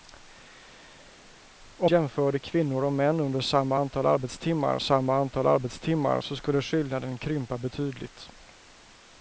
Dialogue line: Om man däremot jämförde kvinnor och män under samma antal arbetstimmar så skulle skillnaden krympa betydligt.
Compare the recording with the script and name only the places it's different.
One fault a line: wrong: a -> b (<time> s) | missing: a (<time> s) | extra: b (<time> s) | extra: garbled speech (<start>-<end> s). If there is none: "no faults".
missing: man däremot (1.9 s)
extra: samma antal arbetstimmar (4.8 s)